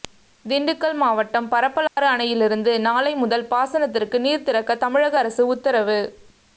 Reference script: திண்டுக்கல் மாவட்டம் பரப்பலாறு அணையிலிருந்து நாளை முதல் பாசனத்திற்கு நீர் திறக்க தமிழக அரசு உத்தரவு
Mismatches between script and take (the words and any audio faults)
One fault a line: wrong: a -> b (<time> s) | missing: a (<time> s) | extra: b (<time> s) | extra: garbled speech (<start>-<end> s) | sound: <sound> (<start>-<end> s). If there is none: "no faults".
sound: dropout (1.9-2.0 s)